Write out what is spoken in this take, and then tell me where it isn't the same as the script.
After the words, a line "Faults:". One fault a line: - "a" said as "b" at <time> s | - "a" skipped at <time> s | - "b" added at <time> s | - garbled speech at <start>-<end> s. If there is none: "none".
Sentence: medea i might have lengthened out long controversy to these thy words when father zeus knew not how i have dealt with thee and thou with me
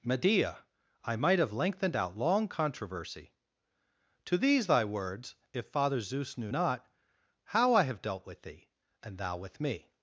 medea i might have lengthened out long controversy to these thy words if father zeus knew not how i have dealt with thee and thou with me
Faults:
- "when" said as "if" at 5.5 s